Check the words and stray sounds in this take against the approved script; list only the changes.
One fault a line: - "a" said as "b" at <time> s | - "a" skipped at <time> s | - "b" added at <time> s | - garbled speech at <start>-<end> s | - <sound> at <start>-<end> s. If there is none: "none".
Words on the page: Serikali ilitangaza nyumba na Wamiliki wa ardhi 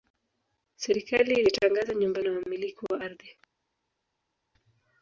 none